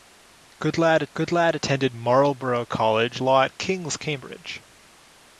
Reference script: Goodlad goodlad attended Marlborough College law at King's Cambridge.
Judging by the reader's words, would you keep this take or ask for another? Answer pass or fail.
pass